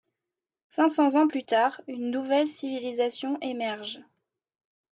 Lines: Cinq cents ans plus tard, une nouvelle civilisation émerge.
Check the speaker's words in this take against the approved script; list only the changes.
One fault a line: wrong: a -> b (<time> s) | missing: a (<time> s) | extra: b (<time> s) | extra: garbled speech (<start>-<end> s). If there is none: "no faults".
no faults